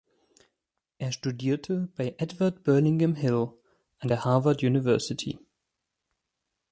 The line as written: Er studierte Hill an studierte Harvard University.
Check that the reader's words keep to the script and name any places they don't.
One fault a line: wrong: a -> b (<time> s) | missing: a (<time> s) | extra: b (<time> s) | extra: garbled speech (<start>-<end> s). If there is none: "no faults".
extra: bei Edward Burlingame (1.9 s)
wrong: studierte -> der (4.1 s)